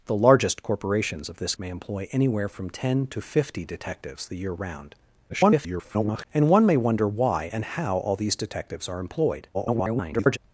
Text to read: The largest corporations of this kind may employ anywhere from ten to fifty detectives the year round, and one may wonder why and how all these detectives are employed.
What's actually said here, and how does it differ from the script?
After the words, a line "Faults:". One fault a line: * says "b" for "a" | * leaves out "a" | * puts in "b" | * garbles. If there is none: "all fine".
The largest corporations of this may employ anywhere from ten to fifty detectives the year round, [garbled] and one may wonder why and how all these detectives are employed. [garbled]
Faults:
* leaves out "kind"
* garbles
* garbles